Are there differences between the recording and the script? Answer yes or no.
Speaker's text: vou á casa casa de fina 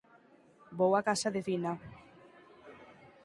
yes